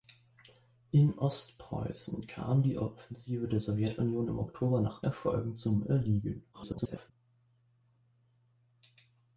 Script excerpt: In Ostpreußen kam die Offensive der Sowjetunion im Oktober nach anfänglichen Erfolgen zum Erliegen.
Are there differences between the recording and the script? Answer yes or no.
yes